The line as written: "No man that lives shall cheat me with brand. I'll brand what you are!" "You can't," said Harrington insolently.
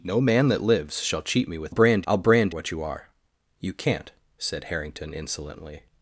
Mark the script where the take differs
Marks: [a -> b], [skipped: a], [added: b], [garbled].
"No man that lives shall cheat me with brand. I'll brand what you are!" "You can't," said Harrington insolently.